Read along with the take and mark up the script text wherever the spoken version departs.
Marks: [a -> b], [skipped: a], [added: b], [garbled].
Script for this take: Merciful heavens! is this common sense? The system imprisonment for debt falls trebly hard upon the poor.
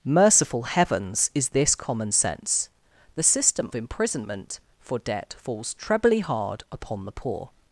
Merciful heavens! is this common sense? The system imprisonment for debt falls trebly hard upon the poor.